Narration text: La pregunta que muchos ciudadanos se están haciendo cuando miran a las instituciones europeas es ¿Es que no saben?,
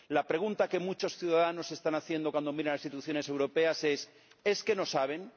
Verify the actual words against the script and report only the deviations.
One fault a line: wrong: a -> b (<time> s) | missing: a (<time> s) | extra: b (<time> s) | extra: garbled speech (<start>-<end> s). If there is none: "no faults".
no faults